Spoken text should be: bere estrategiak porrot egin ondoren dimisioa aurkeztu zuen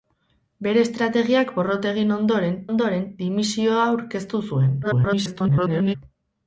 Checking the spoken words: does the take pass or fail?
fail